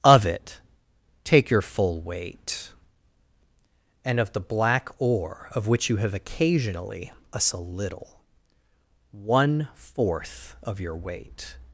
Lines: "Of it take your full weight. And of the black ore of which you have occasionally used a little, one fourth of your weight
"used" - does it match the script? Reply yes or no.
no